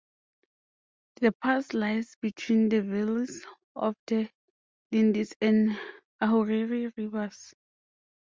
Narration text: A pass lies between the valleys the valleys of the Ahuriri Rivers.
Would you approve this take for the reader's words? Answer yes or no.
no